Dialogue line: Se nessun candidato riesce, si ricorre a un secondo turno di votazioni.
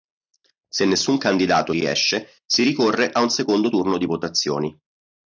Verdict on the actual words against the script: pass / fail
pass